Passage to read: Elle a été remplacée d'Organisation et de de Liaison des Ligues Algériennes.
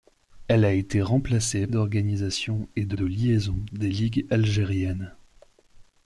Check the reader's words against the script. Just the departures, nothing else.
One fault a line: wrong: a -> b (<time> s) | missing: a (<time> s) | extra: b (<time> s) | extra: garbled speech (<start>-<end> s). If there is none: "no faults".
no faults